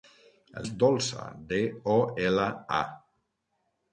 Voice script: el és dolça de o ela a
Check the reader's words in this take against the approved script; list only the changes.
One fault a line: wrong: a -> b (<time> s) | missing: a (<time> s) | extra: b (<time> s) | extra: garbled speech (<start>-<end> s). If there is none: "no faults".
no faults